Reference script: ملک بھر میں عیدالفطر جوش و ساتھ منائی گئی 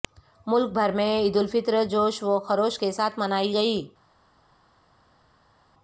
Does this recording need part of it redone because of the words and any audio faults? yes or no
yes